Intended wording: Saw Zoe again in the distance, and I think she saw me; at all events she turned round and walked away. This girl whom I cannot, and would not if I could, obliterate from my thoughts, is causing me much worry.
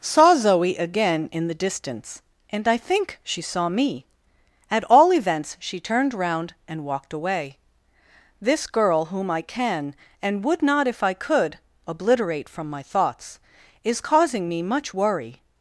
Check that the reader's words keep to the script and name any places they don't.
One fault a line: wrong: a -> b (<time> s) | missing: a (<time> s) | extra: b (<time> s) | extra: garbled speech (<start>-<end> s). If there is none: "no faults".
wrong: cannot -> can (9.4 s)